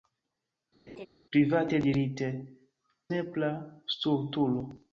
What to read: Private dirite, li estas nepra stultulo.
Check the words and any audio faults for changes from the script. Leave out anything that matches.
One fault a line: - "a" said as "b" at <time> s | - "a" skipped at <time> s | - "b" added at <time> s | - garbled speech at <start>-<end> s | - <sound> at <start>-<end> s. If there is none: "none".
- laugh at 0.9-1.1 s
- "li estas" skipped at 2.3 s